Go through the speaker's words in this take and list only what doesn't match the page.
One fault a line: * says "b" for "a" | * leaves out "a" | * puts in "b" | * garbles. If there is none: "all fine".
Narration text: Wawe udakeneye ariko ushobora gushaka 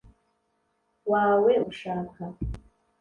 * leaves out "udakeneye ariko ushobora"